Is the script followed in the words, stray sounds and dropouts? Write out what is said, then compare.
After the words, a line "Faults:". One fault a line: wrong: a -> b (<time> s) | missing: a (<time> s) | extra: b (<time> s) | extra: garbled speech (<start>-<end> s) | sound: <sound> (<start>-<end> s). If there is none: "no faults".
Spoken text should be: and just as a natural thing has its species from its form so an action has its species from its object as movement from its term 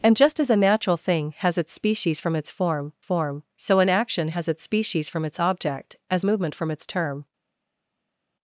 and just as a natural thing has its species from its form form so an action has its species from its object as movement from its term
Faults:
extra: form (3.0 s)